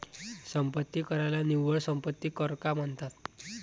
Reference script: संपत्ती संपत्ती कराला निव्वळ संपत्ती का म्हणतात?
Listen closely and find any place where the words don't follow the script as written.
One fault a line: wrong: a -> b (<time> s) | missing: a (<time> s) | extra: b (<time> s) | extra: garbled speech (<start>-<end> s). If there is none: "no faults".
missing: संपत्ती (1.0 s)
extra: कर (2.3 s)